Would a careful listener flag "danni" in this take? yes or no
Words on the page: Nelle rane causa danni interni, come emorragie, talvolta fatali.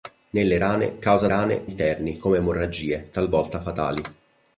yes